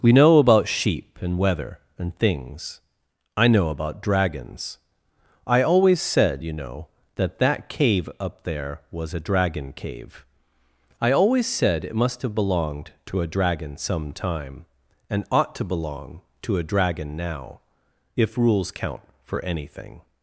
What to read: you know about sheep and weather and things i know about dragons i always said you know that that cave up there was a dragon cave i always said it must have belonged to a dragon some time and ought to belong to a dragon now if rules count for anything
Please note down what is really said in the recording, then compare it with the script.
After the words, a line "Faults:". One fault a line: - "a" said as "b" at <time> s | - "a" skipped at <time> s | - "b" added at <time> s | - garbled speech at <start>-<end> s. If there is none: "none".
we know about sheep and weather and things i know about dragons i always said you know that that cave up there was a dragon cave i always said it must have belonged to a dragon some time and ought to belong to a dragon now if rules count for anything
Faults:
- "you" said as "we" at 0.0 s